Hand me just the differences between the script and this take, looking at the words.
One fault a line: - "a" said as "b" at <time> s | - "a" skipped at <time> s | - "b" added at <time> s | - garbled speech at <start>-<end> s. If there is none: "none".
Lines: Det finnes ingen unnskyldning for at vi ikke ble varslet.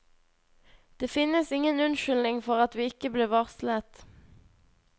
none